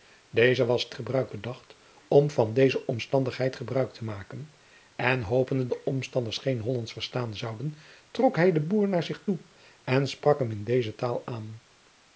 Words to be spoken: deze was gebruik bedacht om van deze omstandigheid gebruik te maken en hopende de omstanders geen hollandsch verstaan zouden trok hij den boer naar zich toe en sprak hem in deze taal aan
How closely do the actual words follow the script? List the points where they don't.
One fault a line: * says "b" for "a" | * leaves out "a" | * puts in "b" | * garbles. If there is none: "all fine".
all fine